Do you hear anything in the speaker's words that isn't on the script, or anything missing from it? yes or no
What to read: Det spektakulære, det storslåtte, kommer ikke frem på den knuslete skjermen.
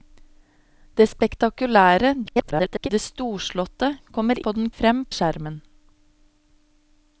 yes